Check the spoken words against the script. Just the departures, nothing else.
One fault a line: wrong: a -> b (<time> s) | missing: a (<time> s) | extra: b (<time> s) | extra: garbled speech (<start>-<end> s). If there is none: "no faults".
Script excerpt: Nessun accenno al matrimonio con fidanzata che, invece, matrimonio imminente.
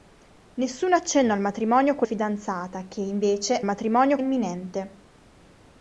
no faults